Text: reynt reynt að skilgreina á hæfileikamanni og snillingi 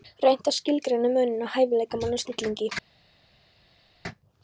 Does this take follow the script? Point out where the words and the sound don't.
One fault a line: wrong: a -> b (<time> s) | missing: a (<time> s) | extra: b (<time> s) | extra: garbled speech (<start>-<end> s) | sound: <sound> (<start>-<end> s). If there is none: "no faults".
missing: reynt (0.5 s)
extra: muninn (1.2 s)